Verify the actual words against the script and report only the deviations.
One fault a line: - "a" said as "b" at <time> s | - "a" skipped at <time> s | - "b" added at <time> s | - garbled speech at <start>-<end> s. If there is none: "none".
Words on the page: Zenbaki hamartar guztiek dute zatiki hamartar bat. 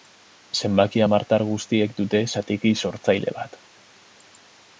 - "hamartar" said as "sortzaile" at 2.9 s